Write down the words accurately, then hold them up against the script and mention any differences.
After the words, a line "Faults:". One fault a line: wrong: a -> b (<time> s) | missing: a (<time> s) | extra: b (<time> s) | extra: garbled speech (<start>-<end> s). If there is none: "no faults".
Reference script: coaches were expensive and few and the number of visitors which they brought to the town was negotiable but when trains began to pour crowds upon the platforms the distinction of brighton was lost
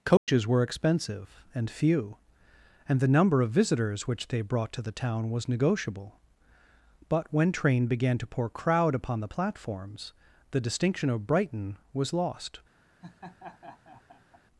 coaches were expensive and few and the number of visitors which they brought to the town was negotiable but when train began to pour crowd upon the platforms the distinction of brighton was lost
Faults:
wrong: trains -> train (7.5 s)
wrong: crowds -> crowd (8.5 s)